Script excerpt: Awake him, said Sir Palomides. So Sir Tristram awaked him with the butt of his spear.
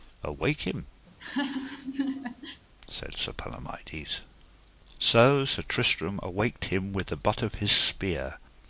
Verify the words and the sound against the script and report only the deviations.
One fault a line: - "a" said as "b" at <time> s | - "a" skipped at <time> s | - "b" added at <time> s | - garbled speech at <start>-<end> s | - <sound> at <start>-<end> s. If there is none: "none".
- laugh at 1.1-2.6 s